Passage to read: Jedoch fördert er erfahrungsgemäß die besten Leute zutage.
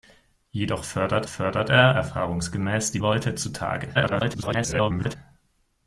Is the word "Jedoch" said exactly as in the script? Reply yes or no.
yes